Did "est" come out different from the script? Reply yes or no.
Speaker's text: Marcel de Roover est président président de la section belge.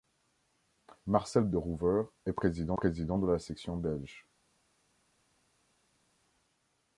no